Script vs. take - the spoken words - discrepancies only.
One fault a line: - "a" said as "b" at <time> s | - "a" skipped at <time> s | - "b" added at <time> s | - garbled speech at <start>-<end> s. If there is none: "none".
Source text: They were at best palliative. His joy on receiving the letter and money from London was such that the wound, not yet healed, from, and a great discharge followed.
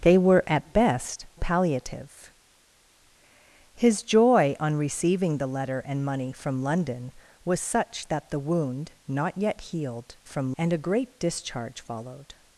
none